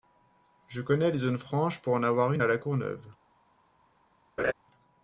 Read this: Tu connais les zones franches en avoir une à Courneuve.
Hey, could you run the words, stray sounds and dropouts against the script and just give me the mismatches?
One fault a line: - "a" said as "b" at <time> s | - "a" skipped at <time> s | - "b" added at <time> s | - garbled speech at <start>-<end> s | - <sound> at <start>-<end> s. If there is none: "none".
- "Tu" said as "Je" at 0.7 s
- "pour" added at 1.8 s
- "La" added at 2.4 s
- laugh at 4.4-4.5 s